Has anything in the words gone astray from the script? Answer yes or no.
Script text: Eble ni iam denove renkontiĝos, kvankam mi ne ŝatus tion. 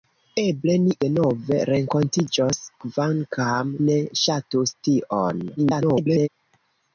yes